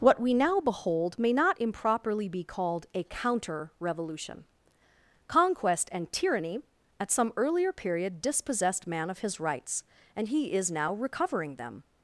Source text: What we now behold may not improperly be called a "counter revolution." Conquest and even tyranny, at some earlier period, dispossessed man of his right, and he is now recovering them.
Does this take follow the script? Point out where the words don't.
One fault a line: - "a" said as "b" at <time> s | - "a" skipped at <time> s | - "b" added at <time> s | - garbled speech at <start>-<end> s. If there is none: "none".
- "even" skipped at 6.1 s
- "right" said as "rights" at 9.4 s